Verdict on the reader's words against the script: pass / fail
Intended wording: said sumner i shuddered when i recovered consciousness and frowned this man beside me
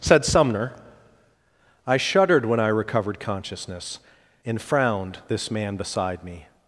pass